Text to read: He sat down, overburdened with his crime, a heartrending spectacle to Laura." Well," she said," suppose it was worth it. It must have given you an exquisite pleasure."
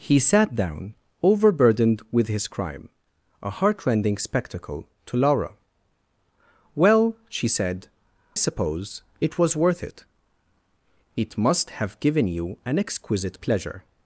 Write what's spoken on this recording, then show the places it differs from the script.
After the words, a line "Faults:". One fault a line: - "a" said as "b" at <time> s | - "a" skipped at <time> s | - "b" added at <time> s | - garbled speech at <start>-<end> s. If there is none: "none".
He sat down, overburdened with his crime, a heartrending spectacle to Laura." Well," she said," suppose it was worth it. It must have given you an exquisite pleasure."
Faults:
none